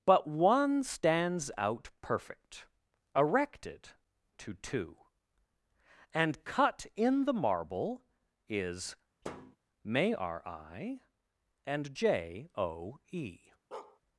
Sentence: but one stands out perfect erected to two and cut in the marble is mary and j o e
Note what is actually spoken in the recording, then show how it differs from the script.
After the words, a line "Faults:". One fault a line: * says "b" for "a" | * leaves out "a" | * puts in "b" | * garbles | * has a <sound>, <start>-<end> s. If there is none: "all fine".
but one stands out perfect erected to two and cut in the marble is may r i and j o e
Faults:
* has a thud, 9.2-9.6 s
* says "may r i" for "mary"
* has a bark, 13.7-14.0 s